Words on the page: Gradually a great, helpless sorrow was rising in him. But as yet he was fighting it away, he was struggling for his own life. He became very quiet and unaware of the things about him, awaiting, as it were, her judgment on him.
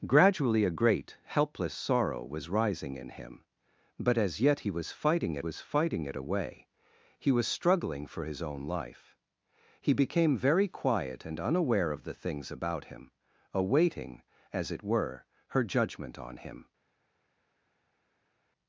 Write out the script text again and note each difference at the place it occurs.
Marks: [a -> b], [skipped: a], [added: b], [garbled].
Gradually a great, helpless sorrow was rising in him. But as yet he was fighting it [added: was fighting it] away, he was struggling for his own life. He became very quiet and unaware of the things about him, awaiting, as it were, her judgment on him.